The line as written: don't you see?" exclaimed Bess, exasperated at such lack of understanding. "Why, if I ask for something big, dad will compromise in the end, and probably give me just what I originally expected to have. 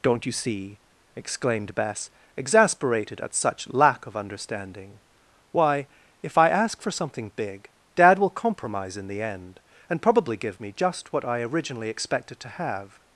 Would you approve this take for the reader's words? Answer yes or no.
yes